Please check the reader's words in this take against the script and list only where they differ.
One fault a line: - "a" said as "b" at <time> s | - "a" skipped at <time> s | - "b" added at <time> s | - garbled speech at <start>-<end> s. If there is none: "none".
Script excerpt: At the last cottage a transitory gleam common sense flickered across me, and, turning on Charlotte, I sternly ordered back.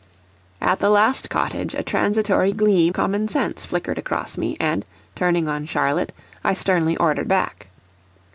none